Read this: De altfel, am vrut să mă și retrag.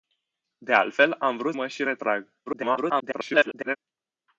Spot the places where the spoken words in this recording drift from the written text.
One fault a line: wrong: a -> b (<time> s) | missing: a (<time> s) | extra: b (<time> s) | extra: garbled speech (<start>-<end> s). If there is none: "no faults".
missing: să (1.6 s)
extra: garbled speech (2.5-3.8 s)